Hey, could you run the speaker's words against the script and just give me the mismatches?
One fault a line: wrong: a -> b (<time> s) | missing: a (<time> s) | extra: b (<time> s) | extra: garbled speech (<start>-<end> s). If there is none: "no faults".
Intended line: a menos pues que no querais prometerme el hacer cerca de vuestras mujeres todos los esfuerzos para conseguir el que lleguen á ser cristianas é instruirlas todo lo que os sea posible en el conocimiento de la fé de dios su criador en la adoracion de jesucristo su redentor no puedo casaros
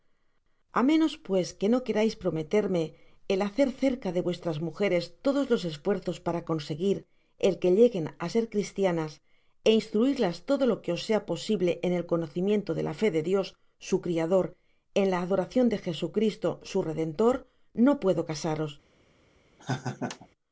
no faults